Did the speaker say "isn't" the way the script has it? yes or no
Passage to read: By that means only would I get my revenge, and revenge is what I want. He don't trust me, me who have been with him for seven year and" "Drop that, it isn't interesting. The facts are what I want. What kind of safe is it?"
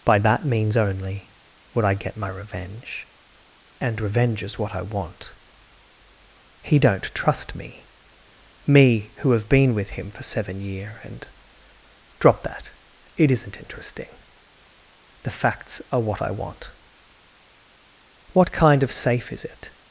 yes